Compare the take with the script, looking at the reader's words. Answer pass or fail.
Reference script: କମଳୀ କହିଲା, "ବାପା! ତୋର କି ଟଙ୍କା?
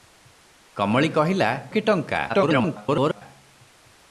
fail